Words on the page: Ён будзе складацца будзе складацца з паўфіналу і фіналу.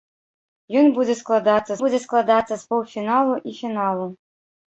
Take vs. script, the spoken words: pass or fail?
pass